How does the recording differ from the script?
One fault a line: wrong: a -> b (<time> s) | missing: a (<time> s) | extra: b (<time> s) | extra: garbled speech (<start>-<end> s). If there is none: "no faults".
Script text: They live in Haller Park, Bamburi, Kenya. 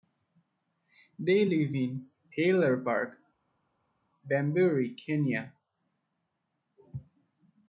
no faults